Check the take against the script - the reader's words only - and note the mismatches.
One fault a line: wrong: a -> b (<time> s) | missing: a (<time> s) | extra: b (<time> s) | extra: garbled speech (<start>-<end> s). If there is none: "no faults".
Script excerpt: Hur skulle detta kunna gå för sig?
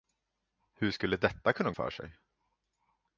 missing: gå (1.7 s)